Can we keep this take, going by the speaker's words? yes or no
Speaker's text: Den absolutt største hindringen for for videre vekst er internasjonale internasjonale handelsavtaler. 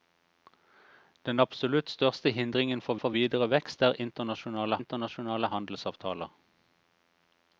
yes